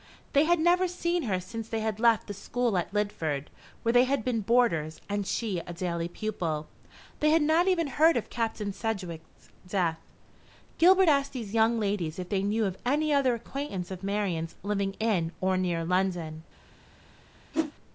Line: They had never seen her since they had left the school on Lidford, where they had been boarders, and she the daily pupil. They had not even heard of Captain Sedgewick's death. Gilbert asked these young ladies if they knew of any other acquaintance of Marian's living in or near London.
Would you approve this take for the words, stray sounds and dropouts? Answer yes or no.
no